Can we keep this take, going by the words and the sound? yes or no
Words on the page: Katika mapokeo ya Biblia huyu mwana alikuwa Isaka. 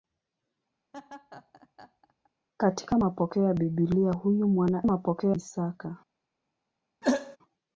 no